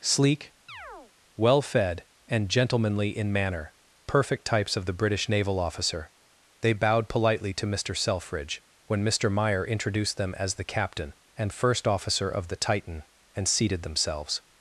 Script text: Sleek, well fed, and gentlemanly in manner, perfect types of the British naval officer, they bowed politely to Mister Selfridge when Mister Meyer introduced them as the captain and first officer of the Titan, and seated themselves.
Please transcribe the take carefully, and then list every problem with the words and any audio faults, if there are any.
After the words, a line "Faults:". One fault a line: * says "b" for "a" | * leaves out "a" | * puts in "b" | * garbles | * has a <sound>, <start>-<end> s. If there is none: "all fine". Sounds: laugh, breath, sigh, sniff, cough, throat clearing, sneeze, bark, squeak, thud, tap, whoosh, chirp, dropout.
Sleek, well fed, and gentlemanly in manner, perfect types of the British naval officer, they bowed politely to Mister Selfridge when Mister Meyer introduced them as the captain and first officer of the Titan, and seated themselves.
Faults:
* has a chirp, 0.7-1.1 s